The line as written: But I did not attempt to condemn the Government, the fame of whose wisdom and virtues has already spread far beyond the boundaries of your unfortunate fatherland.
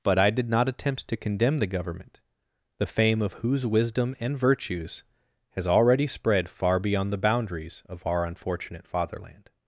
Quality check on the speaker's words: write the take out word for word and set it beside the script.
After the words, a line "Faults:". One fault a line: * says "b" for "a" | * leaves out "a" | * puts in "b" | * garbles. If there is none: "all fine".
But I did not attempt to condemn the Government, the fame of whose wisdom and virtues has already spread far beyond the boundaries of our unfortunate fatherland.
Faults:
* says "our" for "your"